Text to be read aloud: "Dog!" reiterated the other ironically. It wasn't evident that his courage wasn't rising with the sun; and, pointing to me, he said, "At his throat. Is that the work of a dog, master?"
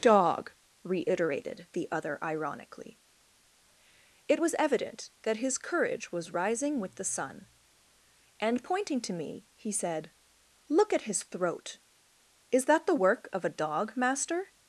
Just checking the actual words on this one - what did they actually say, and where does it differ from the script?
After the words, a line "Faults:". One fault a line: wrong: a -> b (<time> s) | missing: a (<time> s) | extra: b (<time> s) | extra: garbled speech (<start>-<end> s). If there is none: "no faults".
"Dog!" reiterated the other ironically. It was evident that his courage was rising with the sun; and, pointing to me, he said, "Look at his throat. Is that the work of a dog, master?"
Faults:
wrong: wasn't -> was (4.4 s)
wrong: wasn't -> was (6.1 s)
extra: Look (10.7 s)